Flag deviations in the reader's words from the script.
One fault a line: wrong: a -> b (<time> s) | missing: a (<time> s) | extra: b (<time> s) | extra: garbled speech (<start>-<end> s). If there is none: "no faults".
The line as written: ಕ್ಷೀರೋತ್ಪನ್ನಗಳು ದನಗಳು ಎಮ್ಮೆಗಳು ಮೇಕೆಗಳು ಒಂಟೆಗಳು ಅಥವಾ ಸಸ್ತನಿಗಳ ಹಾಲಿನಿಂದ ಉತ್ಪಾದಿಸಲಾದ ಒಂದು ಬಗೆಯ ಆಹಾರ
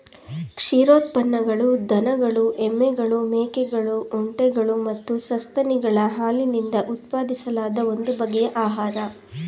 wrong: ಅಥವಾ -> ಮತ್ತು (4.9 s)